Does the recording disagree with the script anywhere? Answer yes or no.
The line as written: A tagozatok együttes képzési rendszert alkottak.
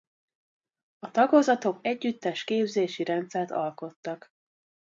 no